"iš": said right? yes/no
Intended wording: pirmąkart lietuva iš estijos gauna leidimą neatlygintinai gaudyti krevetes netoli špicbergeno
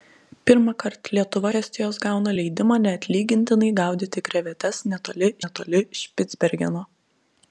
no